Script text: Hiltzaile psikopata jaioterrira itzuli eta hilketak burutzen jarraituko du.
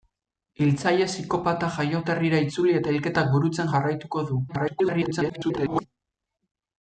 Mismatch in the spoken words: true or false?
true